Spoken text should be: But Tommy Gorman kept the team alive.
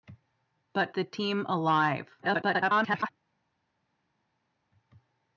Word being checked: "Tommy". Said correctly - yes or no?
no